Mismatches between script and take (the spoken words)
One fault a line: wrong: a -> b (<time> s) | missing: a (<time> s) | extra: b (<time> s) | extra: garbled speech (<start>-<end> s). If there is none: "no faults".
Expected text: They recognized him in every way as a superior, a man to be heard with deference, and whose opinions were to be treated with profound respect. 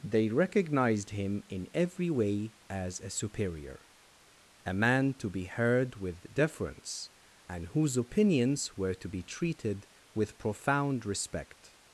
no faults